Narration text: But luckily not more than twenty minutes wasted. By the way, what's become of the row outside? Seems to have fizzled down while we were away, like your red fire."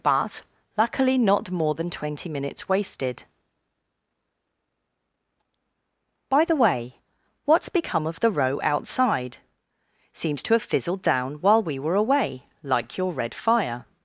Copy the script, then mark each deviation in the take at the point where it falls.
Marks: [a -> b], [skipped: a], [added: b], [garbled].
But luckily not more than twenty minutes wasted. By the way, what's become of the row outside? Seems to have fizzled down while we were away, like your red fire."